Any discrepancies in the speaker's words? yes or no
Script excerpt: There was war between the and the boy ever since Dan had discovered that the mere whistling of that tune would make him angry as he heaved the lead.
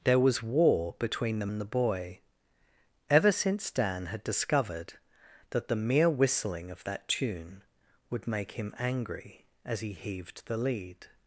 no